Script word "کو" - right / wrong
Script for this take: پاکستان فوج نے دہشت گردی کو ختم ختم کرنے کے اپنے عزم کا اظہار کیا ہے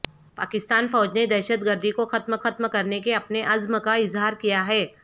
right